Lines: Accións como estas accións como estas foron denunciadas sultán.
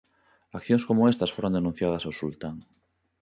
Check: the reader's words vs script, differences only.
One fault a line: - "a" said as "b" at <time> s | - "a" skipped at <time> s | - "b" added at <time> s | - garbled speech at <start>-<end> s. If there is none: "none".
- "accións como estas" skipped at 1.3 s
- "ao" added at 2.0 s